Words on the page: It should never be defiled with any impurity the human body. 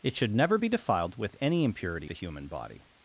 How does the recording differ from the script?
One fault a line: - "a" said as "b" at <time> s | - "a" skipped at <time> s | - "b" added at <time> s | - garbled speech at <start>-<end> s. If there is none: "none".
none